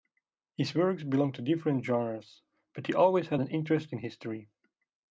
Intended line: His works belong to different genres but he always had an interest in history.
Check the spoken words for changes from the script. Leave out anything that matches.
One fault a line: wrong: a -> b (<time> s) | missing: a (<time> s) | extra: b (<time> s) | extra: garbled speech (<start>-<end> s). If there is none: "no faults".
no faults